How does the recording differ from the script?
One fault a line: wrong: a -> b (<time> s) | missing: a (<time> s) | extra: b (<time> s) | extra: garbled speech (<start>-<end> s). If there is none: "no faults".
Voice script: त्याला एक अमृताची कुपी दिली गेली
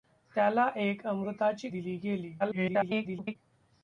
missing: कुपी (1.7 s)
extra: garbled speech (2.4-3.4 s)